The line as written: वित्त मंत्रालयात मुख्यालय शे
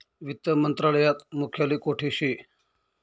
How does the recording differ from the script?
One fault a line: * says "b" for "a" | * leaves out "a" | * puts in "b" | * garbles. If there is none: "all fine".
* puts in "कोठे"